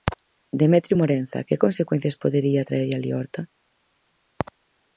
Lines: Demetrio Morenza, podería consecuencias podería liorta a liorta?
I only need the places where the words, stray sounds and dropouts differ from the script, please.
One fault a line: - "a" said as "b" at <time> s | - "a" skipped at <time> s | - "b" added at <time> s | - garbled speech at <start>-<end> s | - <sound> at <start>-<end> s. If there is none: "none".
- "podería" said as "que" at 1.5 s
- "liorta" said as "traerlle" at 2.7 s